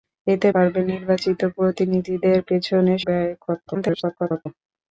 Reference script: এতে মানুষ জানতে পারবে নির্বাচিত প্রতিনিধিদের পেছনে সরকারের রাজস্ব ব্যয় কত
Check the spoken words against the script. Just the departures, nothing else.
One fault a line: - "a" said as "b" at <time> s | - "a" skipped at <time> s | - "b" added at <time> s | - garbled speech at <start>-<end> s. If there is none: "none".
- "মানুষ জানতে" skipped at 0.5 s
- "সরকারের রাজস্ব" skipped at 2.9 s
- garbled speech at 3.7-4.5 s